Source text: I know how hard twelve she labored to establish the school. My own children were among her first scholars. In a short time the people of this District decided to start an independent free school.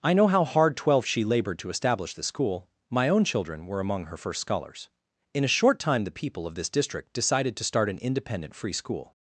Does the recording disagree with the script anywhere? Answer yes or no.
no